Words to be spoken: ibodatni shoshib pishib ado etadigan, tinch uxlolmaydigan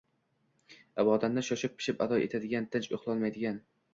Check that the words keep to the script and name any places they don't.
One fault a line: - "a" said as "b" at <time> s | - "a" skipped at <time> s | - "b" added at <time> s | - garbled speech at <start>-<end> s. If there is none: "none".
none